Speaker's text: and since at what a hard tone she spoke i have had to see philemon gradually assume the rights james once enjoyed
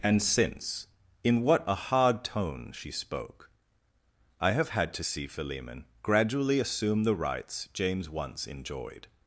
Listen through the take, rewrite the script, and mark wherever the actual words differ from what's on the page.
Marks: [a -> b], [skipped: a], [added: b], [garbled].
and since [at -> in] what a hard tone she spoke i have had to see philemon gradually assume the rights james once enjoyed